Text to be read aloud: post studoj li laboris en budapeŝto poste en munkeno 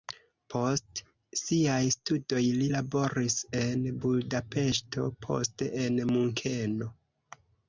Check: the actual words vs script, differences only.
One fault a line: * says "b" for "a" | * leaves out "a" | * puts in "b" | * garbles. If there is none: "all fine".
* puts in "siaj"